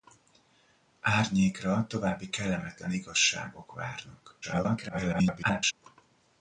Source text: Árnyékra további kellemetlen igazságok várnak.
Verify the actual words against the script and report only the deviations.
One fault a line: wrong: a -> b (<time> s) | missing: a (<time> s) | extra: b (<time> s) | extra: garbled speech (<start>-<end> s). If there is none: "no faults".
extra: garbled speech (4.4-5.7 s)